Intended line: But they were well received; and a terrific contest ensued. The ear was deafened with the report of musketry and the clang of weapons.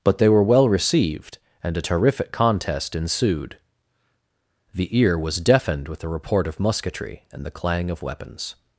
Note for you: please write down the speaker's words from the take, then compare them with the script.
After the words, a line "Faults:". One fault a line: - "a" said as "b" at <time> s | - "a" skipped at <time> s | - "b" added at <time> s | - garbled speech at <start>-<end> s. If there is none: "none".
But they were well received; and a terrific contest ensued. The ear was deafened with the report of musketry and the clang of weapons.
Faults:
none